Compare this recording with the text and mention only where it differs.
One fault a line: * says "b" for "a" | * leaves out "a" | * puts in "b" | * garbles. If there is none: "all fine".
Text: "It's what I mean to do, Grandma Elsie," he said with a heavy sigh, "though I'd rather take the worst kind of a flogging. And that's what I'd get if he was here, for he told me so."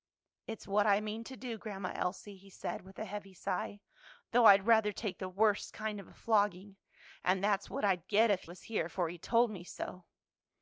* leaves out "he"